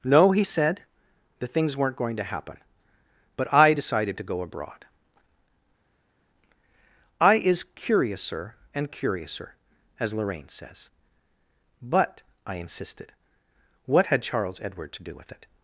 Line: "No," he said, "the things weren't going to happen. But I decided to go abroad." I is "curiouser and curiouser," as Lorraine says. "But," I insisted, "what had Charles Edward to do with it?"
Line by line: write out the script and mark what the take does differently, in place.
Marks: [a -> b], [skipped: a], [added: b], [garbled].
"No," he said, "the things weren't going to happen. But I decided to go abroad." I is "curiouser and curiouser," as Lorraine says. "But," I insisted, "what had Charles Edward to do with it?"